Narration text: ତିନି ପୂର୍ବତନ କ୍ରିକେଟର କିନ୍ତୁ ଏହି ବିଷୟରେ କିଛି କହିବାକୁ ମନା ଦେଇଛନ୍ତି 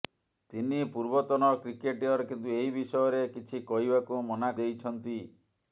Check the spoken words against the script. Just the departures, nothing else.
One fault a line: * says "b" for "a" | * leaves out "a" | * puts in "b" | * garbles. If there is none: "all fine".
all fine